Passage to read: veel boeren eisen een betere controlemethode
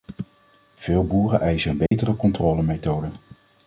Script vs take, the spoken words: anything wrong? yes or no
no